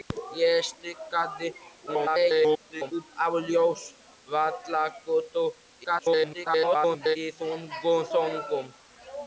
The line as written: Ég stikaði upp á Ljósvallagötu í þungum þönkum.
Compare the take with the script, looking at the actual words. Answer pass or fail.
fail